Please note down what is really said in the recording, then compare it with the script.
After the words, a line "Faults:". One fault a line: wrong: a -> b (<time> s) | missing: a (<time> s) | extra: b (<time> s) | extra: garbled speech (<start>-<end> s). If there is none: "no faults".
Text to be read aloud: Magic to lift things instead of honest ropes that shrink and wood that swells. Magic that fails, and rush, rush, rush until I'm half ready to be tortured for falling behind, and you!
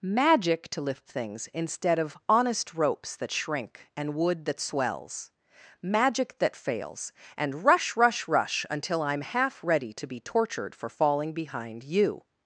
Magic to lift things instead of honest ropes that shrink and wood that swells. Magic that fails, and rush, rush, rush until I'm half ready to be tortured for falling behind, you!
Faults:
missing: and (11.8 s)